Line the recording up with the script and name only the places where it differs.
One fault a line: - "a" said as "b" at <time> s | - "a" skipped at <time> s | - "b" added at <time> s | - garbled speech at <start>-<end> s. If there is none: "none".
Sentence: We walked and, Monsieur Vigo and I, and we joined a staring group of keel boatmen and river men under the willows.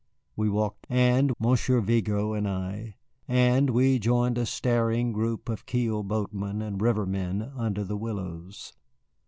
none